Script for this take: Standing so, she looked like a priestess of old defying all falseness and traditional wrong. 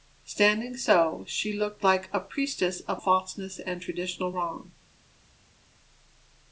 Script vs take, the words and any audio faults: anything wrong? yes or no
yes